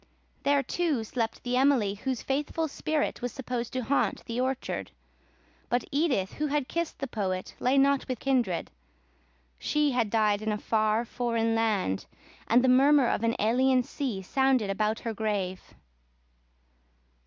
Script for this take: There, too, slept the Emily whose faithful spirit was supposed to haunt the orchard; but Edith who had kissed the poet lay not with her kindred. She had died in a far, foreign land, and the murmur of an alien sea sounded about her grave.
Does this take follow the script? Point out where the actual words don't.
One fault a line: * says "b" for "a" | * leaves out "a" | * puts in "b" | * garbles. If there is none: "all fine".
* leaves out "her"